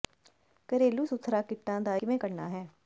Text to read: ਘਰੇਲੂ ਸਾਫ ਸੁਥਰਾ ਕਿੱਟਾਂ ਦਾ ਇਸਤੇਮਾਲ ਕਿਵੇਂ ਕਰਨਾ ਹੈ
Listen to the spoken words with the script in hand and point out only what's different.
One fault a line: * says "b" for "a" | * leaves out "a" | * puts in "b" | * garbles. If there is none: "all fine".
* leaves out "ਸਾਫ"
* leaves out "ਇਸਤੇਮਾਲ"